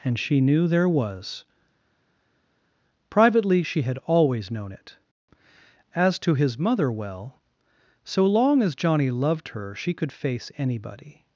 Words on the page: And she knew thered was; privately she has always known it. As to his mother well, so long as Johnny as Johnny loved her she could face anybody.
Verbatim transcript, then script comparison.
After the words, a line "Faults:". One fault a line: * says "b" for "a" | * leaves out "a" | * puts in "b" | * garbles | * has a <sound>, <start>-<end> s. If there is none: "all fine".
And she knew there was; privately she had always known it. As to his mother well, so long as Johnny loved her she could face anybody.
Faults:
* says "there" for "thered"
* says "had" for "has"
* leaves out "as Johnny"